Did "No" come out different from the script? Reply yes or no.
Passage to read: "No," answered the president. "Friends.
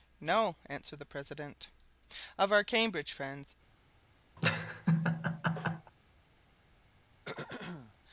no